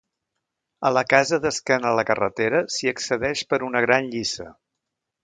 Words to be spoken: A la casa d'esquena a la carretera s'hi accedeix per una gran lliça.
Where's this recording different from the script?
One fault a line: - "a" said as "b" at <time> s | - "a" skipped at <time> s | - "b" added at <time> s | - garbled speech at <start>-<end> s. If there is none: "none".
none